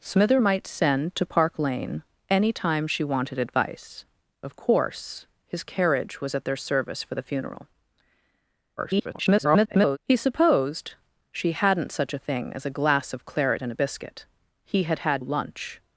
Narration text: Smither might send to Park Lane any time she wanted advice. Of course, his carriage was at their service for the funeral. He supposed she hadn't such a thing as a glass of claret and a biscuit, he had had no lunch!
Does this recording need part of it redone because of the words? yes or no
yes